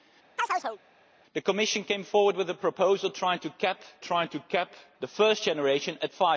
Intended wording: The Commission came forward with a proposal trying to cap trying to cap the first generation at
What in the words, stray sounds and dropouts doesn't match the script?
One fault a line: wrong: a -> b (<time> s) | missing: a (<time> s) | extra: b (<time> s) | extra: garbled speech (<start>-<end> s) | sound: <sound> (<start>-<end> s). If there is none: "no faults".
sound: chirp (0.4-0.8 s)